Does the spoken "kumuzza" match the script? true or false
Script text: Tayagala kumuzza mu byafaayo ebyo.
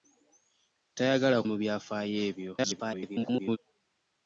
false